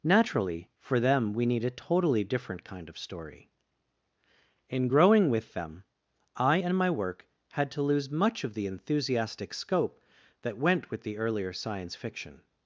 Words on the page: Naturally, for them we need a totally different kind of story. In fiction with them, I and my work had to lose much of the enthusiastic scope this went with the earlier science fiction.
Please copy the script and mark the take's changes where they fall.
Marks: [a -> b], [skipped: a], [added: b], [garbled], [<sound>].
Naturally, for them we need a totally different kind of story. In [fiction -> growing] with them, I and my work had to lose much of the enthusiastic scope [this -> that] went with the earlier science fiction.